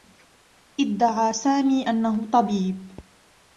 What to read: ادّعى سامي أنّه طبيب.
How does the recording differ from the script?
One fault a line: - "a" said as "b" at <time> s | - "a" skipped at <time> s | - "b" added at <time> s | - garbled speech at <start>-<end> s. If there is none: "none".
none